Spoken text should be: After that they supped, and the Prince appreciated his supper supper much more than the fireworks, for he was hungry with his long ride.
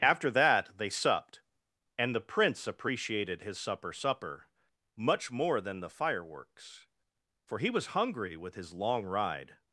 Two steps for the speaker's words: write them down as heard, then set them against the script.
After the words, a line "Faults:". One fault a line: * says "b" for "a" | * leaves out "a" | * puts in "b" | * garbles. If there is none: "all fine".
After that they supped, and the Prince appreciated his supper supper much more than the fireworks, for he was hungry with his long ride.
Faults:
all fine